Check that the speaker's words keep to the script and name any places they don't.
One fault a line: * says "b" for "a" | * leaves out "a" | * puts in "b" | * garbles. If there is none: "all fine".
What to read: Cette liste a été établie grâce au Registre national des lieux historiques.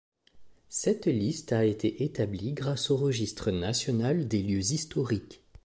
all fine